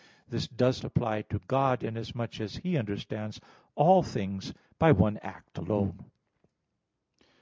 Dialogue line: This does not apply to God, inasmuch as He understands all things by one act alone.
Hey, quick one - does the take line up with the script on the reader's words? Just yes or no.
no